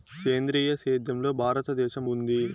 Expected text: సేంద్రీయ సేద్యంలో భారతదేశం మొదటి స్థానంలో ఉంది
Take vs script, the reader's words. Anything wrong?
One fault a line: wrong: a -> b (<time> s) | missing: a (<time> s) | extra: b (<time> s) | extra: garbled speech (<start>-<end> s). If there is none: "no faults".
missing: మొదటి స్థానంలో (2.0 s)